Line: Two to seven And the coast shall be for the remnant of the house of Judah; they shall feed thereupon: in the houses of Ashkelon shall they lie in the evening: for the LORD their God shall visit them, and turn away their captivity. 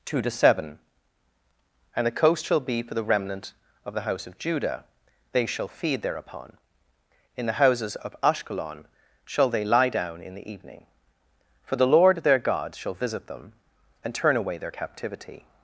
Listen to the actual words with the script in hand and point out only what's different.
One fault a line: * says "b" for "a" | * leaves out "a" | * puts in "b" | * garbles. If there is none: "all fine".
* puts in "down"